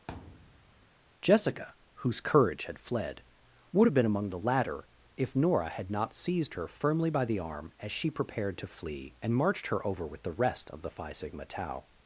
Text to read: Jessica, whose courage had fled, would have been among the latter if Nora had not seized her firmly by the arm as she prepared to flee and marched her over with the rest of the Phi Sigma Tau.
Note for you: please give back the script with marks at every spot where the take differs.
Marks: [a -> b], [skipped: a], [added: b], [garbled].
Jessica, whose courage had fled, would have been among the latter if Nora had not seized her firmly by the arm as she prepared to flee and marched her over with the rest of the Phi Sigma Tau.